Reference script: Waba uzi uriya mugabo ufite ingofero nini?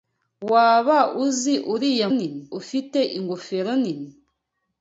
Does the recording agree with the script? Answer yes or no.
no